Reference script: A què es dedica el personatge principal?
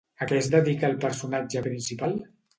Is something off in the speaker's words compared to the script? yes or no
no